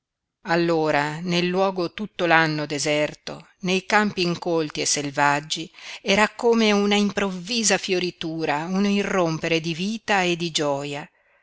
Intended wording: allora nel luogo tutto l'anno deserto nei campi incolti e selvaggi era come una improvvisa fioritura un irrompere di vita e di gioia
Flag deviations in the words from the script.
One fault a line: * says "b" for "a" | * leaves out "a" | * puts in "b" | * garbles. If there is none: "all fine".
all fine